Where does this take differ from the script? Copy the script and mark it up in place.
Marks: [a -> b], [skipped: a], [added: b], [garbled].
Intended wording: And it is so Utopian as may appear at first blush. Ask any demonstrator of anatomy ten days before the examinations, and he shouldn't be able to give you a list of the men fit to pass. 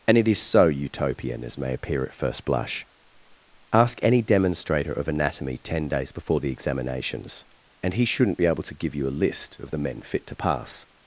And it is so Utopian as may appear at first blush. Ask any demonstrator of anatomy ten days before the examinations, and he shouldn't be able to give you a list of the men fit to pass.